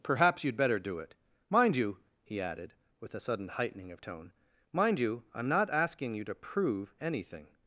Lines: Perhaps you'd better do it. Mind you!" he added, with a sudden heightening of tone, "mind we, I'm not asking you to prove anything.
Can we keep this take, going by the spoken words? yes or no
no